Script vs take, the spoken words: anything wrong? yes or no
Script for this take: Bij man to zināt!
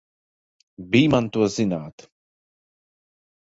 no